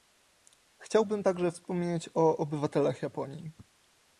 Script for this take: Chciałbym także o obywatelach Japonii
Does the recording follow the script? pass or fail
fail